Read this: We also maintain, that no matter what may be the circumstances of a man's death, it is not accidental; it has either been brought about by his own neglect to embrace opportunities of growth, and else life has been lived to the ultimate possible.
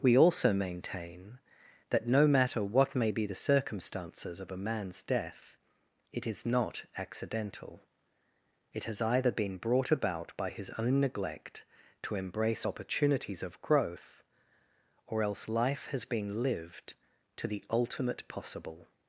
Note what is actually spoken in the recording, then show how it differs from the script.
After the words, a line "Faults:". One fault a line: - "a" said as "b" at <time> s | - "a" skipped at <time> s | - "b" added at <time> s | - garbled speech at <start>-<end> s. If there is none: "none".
We also maintain, that no matter what may be the circumstances of a man's death, it is not accidental; it has either been brought about by his own neglect to embrace opportunities of growth, or else life has been lived to the ultimate possible.
Faults:
- "and" said as "or" at 15.1 s